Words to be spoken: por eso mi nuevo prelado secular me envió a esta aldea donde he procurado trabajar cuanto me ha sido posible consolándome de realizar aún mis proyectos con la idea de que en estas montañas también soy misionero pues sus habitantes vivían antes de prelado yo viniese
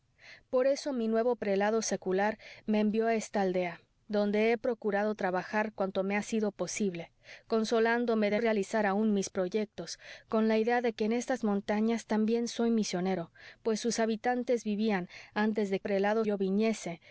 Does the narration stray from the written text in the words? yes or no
no